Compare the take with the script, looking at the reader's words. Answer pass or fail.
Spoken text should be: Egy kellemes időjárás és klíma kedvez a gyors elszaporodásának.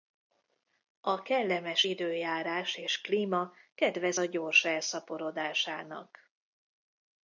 fail